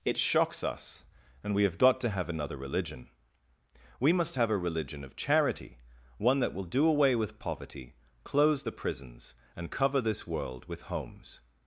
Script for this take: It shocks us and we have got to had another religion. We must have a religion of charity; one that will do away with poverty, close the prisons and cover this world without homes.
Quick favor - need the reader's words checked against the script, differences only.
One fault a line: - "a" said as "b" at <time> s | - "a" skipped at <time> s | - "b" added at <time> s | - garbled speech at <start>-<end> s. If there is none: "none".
- "had" said as "have" at 2.1 s
- "without" said as "with" at 10.7 s